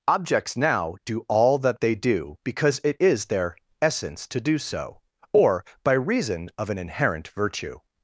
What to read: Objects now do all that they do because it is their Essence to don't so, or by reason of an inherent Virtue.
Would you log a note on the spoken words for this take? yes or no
yes